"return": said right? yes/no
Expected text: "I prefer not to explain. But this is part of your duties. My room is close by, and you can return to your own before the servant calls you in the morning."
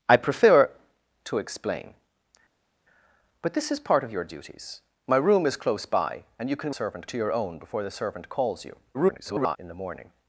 no